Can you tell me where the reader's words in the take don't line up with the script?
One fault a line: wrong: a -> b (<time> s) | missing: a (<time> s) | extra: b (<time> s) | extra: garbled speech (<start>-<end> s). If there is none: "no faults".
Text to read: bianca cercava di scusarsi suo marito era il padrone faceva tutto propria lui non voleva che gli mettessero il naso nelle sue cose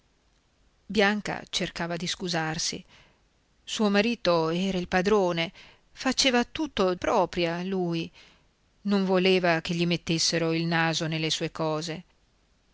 no faults